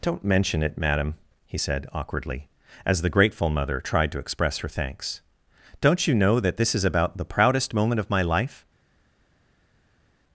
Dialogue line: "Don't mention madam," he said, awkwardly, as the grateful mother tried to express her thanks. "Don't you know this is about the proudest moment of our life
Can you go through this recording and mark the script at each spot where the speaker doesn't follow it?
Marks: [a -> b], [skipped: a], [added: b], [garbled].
"Don't mention [added: it] madam," he said, awkwardly, as the grateful mother tried to express her thanks. "Don't you know [added: that] this is about the proudest moment of [our -> my] life